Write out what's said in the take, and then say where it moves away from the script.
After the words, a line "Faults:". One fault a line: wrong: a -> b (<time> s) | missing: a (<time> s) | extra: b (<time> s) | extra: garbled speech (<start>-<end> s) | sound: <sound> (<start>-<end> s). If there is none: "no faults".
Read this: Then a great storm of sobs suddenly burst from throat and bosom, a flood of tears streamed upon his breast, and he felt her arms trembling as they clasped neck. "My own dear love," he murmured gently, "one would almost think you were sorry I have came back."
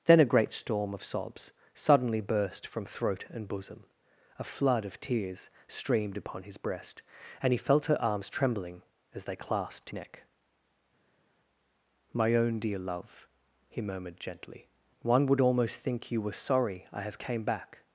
Then a great storm of sobs suddenly burst from throat and bosom, a flood of tears streamed upon his breast, and he felt her arms trembling as they clasped neck. "My own dear love," he murmured gently, "one would almost think you were sorry I have came back."
Faults:
no faults